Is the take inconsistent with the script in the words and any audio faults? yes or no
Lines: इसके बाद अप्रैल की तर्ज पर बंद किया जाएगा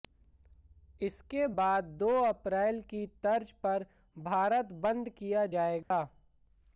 yes